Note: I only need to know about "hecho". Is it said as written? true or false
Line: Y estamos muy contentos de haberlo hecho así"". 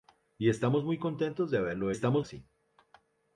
false